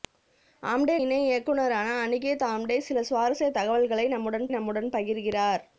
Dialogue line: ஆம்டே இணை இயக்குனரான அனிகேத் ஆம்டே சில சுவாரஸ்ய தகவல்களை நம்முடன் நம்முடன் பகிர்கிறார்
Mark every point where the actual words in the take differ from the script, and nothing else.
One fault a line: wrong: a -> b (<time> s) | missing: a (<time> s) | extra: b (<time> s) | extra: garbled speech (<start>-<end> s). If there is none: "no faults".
no faults